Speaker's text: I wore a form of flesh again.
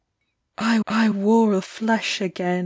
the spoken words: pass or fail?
fail